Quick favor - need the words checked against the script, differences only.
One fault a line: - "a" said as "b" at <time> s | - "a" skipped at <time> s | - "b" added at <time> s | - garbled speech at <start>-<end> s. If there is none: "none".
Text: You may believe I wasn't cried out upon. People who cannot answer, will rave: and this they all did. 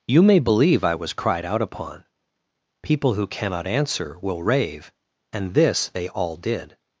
- "wasn't" said as "was" at 0.9 s